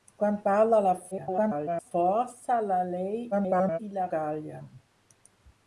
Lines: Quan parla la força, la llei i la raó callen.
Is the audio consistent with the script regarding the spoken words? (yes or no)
no